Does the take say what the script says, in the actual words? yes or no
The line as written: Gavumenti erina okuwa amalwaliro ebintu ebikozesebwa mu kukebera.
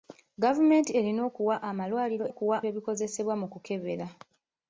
no